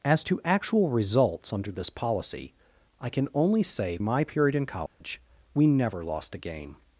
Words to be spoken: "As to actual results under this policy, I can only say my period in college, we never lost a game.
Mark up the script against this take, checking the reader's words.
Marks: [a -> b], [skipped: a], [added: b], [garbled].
"As to actual results under this policy, I can only say my period in college, we never lost a game.